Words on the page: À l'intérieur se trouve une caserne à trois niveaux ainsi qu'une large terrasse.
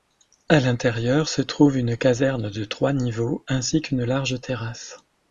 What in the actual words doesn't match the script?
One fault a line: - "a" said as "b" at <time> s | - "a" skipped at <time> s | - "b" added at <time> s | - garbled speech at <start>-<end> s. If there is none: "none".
- "à" said as "de" at 2.5 s